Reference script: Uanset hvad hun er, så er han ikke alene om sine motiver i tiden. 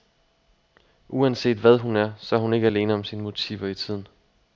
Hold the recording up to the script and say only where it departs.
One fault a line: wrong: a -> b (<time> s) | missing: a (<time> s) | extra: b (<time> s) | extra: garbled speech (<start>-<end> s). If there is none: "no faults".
wrong: han -> hun (2.4 s)